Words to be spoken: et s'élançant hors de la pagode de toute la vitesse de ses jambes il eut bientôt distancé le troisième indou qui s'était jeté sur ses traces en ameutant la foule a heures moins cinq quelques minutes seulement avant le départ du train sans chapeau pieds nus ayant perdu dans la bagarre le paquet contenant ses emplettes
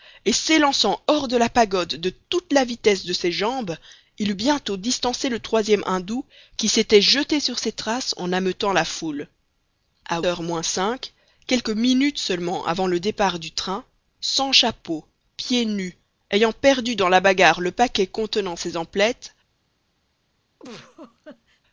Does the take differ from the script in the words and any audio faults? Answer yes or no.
yes